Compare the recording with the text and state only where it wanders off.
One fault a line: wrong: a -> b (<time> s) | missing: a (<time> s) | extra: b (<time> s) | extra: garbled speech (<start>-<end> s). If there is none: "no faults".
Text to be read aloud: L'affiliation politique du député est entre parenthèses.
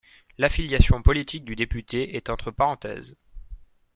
no faults